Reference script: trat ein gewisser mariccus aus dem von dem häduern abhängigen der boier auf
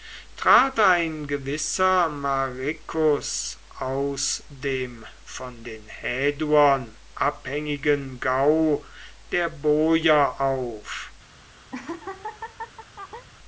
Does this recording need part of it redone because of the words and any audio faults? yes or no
yes